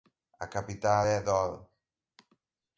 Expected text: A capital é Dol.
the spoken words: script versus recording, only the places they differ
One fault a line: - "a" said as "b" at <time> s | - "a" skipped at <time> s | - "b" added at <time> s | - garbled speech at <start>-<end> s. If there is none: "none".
none